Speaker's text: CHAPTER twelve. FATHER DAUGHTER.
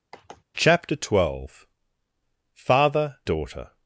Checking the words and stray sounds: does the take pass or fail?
fail